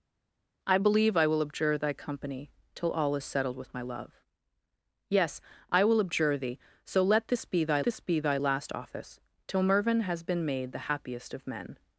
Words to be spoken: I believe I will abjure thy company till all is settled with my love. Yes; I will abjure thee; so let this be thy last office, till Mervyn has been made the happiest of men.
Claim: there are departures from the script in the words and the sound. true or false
true